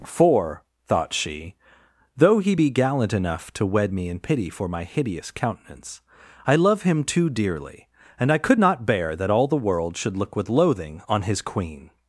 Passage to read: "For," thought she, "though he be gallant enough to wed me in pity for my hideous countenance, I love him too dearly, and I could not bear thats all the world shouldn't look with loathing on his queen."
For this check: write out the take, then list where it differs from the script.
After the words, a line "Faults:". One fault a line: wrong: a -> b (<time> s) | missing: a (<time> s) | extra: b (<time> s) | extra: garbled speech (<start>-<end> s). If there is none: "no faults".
"For," thought she, "though he be gallant enough to wed me in pity for my hideous countenance, I love him too dearly, and I could not bear that all the world should look with loathing on his queen."
Faults:
wrong: thats -> that (9.1 s)
wrong: shouldn't -> should (10.0 s)